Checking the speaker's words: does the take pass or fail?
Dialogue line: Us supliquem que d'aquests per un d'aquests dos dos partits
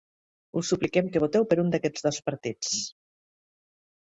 fail